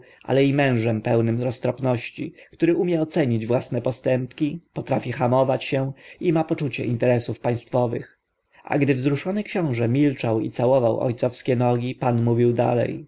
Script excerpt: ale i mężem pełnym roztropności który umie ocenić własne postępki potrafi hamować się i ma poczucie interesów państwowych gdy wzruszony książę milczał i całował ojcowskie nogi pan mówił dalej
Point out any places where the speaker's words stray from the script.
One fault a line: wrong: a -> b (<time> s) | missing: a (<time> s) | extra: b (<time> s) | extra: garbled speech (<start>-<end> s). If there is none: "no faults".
extra: a (8.6 s)